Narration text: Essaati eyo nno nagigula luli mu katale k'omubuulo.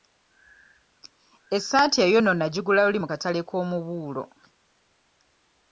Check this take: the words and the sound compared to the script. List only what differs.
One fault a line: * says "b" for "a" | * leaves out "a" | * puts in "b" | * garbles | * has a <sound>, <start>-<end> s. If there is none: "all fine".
all fine